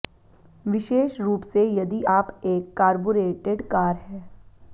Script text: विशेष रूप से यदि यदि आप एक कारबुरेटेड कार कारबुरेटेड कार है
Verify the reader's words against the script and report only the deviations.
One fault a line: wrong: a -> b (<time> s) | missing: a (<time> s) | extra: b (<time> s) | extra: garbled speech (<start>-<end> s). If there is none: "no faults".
missing: यदि (2.0 s)
missing: कारबुरेटेड कार (3.9 s)